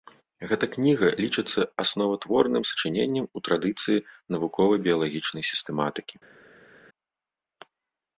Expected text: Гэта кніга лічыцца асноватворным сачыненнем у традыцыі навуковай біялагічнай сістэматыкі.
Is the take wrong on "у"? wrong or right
right